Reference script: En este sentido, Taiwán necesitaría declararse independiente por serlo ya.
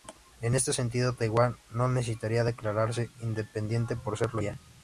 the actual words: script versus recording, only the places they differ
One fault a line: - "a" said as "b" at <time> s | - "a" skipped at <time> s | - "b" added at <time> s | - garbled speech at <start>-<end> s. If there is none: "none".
- "no" added at 1.7 s